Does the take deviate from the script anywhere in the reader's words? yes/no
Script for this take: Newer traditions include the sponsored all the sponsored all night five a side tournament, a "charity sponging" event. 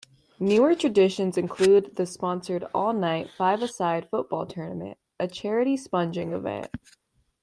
yes